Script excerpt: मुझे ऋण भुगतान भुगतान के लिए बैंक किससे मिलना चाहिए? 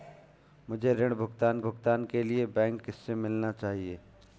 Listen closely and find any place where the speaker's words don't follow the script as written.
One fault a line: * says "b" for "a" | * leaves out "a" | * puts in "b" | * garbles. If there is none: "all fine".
all fine